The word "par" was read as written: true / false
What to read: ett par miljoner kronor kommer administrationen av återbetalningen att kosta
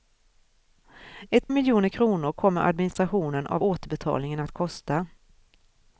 false